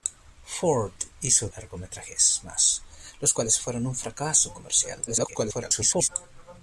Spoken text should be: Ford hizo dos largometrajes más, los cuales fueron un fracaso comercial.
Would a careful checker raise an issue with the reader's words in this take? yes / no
yes